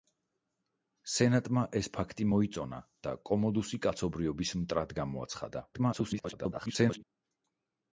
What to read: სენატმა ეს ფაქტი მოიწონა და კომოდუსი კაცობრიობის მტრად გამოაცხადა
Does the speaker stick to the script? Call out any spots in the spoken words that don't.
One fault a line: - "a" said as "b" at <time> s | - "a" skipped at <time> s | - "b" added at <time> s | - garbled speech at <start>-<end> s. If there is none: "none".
- garbled speech at 5.7-7.0 s